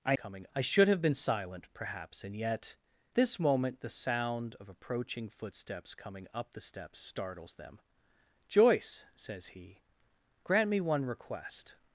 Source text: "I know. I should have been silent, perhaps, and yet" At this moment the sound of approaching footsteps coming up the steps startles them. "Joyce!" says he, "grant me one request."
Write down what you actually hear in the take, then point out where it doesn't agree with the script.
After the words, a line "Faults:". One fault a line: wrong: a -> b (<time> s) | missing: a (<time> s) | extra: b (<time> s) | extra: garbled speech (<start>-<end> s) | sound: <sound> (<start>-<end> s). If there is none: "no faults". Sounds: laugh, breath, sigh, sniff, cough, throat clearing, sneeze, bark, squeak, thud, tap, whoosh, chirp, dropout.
"I coming. I should have been silent, perhaps, and yet" This moment the sound of approaching footsteps coming up the steps startles them. "Joyce!" says he, "grant me one request."
Faults:
wrong: know -> coming (0.1 s)
missing: At (2.7 s)